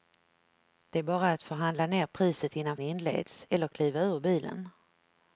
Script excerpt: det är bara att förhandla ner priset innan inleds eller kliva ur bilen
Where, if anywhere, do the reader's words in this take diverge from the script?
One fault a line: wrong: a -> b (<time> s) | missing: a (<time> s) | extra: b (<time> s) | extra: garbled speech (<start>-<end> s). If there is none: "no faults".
no faults